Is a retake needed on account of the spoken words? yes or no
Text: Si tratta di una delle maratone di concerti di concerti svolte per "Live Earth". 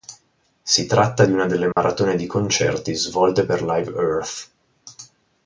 yes